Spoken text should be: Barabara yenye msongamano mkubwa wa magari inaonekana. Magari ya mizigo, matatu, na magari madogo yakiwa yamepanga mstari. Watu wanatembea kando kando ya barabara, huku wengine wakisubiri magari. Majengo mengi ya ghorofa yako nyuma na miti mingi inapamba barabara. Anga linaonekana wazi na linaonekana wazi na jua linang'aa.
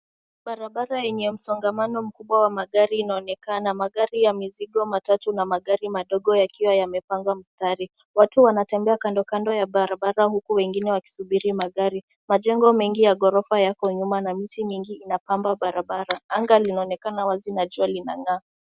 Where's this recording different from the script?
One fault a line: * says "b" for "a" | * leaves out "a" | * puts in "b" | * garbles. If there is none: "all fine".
* leaves out "linaonekana wazi na"